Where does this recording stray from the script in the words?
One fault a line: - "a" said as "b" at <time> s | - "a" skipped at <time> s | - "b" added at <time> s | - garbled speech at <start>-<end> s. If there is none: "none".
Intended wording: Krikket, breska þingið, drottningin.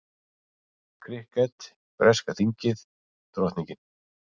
none